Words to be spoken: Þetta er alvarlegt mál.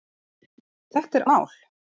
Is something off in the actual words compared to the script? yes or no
yes